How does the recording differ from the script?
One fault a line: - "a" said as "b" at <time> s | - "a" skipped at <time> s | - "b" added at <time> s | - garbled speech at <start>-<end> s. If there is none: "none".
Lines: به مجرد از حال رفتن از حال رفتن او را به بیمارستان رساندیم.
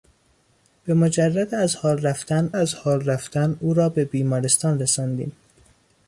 none